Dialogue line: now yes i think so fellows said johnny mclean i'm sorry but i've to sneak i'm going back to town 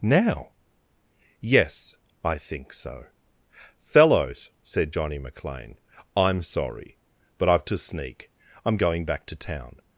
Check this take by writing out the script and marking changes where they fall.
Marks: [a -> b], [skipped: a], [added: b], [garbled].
now yes i think so fellows said johnny mclean i'm sorry but i've to sneak i'm going back to town